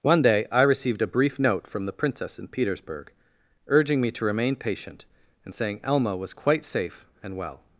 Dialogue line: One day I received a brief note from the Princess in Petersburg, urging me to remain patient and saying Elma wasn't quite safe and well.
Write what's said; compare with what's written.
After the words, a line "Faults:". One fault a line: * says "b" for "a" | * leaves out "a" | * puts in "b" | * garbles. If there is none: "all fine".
One day I received a brief note from the Princess in Petersburg, urging me to remain patient and saying Elma was quite safe and well.
Faults:
* says "was" for "wasn't"